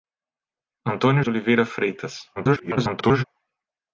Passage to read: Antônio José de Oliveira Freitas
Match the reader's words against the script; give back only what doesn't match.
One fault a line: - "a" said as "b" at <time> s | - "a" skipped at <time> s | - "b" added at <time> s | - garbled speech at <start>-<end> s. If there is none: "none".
- "José" skipped at 1.2 s
- garbled speech at 2.4-3.2 s